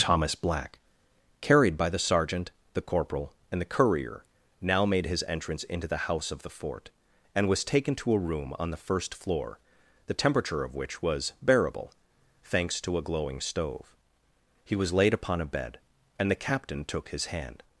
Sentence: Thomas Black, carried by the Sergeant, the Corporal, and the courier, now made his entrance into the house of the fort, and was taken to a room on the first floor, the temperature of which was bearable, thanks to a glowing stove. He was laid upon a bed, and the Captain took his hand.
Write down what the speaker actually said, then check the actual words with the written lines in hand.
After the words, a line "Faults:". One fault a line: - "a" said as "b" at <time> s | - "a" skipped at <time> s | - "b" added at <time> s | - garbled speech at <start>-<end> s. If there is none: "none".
Thomas Black, carried by the Sergeant, the Corporal, and the courier, now made his entrance into the house of the fort, and was taken to a room on the first floor, the temperature of which was bearable, thanks to a glowing stove. He was laid upon a bed, and the Captain took his hand.
Faults:
none